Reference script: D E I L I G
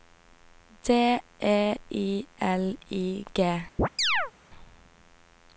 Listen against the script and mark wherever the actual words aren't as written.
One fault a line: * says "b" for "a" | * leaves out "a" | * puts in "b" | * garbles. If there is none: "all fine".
all fine